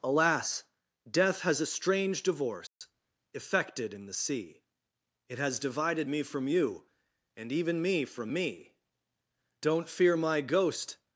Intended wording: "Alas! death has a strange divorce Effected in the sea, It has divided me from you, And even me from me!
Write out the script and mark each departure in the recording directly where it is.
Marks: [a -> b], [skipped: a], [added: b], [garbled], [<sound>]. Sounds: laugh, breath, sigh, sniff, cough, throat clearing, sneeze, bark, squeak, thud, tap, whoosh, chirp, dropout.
"Alas! death has a strange divorce [dropout] Effected in the sea, It has divided me from you, And even me from me! [added: Don't fear my ghost]